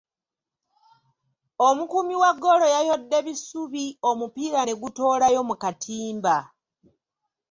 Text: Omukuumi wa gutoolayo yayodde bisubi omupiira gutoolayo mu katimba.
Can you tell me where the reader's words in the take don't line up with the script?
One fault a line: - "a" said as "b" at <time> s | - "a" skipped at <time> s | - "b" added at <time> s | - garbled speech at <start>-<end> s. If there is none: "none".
- "gutoolayo" said as "ggoolo" at 2.4 s
- "ne" added at 4.6 s